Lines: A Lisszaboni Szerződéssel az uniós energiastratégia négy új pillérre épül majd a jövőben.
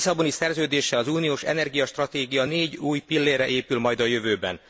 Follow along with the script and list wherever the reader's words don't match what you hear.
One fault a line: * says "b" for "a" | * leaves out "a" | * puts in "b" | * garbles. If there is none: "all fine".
all fine